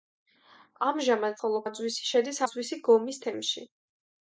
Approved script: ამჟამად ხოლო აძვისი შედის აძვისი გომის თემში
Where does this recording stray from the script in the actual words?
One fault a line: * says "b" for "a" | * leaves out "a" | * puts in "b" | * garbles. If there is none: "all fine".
all fine